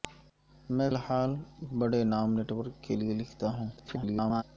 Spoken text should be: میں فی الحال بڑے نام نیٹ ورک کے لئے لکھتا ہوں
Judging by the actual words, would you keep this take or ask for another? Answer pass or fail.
fail